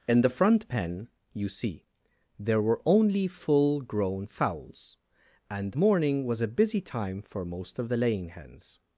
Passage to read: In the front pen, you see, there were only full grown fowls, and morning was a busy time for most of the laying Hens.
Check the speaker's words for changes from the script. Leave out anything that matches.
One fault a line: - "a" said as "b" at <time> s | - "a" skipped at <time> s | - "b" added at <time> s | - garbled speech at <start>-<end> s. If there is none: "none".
none